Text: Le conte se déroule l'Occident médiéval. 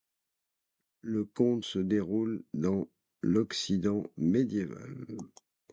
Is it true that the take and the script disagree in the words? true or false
true